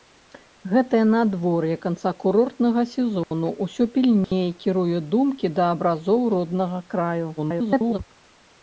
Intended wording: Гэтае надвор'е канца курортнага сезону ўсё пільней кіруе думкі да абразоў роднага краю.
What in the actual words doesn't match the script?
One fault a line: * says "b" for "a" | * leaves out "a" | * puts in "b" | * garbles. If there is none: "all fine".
* garbles